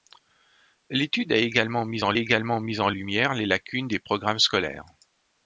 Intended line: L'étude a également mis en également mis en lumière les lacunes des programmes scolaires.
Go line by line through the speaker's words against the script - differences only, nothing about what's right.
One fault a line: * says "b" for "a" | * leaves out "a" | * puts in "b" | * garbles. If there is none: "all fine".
all fine